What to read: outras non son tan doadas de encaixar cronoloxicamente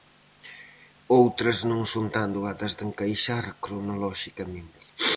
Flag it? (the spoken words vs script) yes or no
no